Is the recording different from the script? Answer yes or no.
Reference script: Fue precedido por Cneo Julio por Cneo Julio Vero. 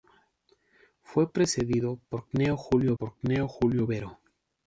no